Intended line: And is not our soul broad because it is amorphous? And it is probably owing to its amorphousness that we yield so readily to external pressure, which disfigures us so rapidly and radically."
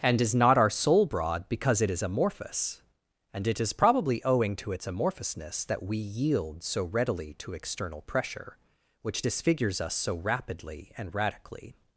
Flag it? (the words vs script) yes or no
no